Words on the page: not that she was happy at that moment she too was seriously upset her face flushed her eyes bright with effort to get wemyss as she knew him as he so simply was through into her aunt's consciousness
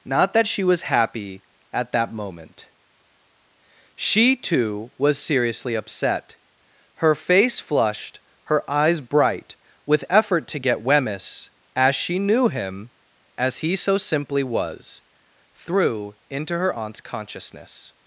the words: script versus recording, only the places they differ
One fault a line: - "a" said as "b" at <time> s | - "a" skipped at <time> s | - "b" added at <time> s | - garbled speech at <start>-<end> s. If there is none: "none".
none